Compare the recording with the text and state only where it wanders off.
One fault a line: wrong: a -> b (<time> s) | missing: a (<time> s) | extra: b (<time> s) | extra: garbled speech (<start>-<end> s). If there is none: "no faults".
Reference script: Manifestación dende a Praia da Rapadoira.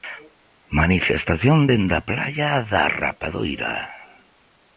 no faults